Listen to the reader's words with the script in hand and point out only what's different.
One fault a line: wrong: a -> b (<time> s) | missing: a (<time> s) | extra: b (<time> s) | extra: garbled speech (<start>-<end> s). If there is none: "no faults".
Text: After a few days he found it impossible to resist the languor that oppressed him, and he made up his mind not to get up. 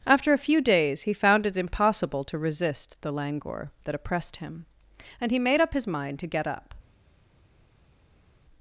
missing: not (6.2 s)